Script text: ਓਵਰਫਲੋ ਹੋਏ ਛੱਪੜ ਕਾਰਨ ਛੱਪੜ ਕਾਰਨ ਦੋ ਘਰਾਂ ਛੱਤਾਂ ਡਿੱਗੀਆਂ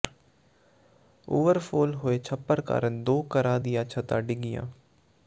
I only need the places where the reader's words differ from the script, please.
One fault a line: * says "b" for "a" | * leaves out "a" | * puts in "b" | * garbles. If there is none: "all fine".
* leaves out "ਛੱਪੜ ਕਾਰਨ"
* puts in "ਦੀਆਂ"